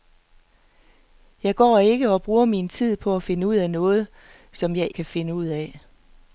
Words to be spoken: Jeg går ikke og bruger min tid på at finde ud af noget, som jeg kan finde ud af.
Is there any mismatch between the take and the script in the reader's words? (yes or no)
no